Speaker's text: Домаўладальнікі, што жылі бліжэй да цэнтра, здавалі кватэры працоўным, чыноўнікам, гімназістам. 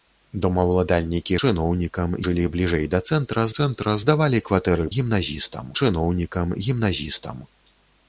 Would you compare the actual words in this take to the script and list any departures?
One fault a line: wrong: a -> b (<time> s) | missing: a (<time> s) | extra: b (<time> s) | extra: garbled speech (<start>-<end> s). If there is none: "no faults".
wrong: што -> чыноўнікам (1.4 s)
extra: цэнтра (3.6 s)
wrong: працоўным -> гімназістам (5.0 s)